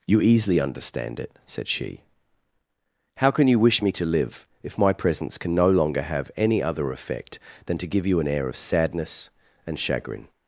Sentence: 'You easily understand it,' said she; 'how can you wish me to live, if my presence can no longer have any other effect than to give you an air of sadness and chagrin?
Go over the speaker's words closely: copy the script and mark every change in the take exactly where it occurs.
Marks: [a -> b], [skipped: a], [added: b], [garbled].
'You easily understand it,' said she; 'how can you wish me to live, if my presence can no longer have any other effect than to give you an air of sadness and chagrin?